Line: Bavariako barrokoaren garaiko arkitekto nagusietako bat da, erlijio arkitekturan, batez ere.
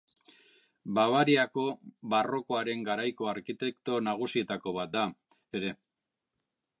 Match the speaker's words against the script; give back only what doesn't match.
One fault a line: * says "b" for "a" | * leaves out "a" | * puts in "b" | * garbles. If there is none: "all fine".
* leaves out "erlijio arkitekturan batez"